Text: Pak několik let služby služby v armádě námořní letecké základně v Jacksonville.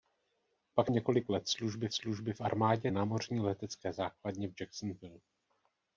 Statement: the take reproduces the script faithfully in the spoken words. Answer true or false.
true